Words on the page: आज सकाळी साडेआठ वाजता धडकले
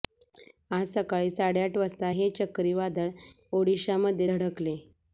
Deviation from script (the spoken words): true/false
true